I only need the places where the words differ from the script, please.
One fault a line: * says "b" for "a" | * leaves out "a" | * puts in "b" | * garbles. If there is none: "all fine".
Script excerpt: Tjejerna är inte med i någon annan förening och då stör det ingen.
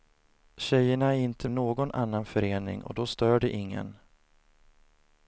* leaves out "med"